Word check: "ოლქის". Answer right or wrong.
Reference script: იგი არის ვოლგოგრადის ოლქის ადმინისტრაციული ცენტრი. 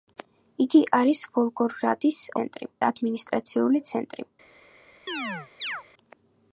wrong